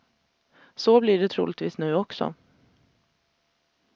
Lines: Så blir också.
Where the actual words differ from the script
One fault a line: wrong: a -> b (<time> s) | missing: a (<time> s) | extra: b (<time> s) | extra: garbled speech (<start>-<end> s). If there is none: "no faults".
extra: det troligtvis nu (1.2 s)